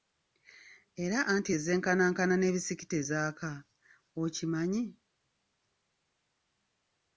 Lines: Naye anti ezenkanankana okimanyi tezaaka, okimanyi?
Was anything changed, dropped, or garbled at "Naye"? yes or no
yes